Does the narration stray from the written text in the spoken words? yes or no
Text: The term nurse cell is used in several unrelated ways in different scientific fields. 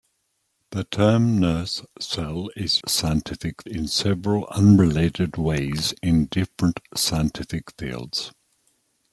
yes